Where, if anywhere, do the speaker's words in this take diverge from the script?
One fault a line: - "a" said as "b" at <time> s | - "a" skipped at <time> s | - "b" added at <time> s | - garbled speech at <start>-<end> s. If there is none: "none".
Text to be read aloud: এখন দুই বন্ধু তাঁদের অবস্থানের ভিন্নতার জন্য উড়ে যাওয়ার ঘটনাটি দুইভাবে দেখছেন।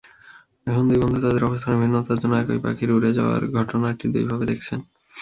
- "একই পাখির" added at 2.4 s